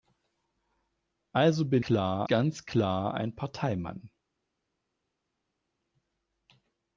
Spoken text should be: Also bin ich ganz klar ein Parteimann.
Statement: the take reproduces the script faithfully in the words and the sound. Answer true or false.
false